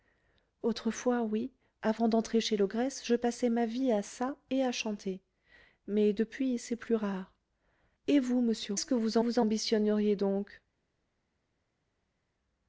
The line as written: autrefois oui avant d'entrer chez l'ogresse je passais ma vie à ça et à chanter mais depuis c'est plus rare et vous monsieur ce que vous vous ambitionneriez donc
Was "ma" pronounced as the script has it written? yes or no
yes